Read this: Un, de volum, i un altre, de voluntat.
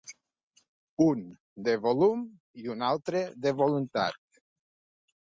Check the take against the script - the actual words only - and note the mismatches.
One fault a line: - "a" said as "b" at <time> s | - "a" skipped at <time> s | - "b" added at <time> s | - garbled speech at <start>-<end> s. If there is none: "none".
none